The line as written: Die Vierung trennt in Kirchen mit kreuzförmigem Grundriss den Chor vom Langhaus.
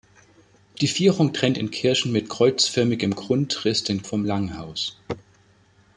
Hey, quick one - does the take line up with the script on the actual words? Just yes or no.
no